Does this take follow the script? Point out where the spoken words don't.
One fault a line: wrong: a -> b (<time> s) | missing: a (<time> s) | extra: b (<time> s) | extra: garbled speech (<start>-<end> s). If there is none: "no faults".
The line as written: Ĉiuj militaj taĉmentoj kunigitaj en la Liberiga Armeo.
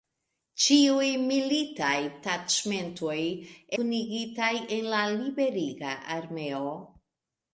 no faults